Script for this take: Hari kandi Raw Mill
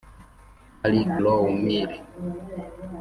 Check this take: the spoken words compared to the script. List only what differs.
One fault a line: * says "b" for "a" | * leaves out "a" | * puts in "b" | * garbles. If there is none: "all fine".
* leaves out "kandi"